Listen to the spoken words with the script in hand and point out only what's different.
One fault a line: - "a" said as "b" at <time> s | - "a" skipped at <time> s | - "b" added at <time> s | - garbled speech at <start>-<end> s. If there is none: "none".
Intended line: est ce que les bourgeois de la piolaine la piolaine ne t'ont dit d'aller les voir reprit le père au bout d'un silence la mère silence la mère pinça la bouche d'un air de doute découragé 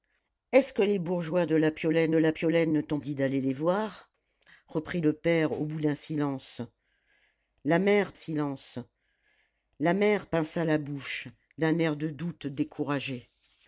none